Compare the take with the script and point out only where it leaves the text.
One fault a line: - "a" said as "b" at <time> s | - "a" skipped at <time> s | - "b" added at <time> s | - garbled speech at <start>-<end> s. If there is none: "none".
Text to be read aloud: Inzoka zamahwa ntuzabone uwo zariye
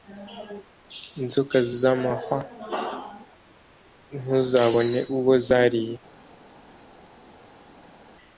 none